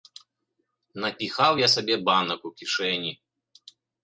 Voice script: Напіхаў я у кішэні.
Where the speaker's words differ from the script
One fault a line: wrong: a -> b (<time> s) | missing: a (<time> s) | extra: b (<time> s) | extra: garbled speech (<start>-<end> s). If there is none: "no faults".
extra: сабе банак (1.7 s)